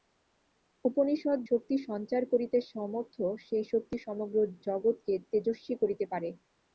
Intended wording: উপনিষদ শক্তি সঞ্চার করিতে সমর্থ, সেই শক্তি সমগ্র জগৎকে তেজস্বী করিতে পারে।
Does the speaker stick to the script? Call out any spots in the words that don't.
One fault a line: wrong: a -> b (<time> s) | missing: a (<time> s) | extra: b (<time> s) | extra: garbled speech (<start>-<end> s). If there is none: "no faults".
no faults